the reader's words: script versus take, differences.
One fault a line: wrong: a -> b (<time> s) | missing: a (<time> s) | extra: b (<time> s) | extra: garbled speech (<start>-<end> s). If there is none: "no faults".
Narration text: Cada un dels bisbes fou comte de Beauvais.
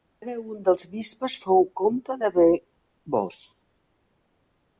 no faults